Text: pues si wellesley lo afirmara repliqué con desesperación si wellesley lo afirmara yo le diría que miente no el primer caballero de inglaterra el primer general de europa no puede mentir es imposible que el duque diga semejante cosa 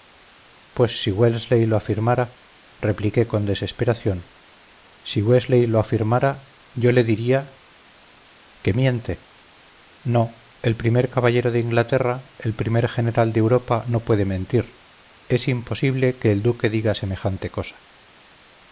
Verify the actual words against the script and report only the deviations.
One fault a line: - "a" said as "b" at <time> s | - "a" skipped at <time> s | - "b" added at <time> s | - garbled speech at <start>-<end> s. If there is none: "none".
none